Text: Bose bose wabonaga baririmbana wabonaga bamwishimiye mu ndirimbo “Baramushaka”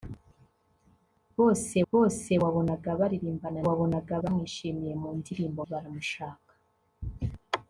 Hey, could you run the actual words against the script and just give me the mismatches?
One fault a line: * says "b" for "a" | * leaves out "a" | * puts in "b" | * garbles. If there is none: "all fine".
all fine